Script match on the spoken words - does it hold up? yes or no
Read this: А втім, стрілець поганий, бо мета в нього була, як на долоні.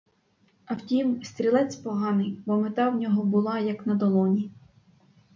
yes